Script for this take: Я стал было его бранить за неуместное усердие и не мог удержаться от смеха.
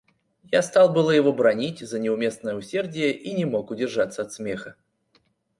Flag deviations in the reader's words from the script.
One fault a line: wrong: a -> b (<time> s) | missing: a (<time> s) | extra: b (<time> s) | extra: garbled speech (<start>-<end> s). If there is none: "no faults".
no faults